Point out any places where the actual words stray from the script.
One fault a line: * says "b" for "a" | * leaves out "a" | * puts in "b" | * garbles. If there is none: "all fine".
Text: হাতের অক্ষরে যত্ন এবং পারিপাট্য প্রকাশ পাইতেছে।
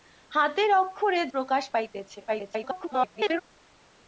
* leaves out "যত্ন এবং পারিপাট্য"
* garbles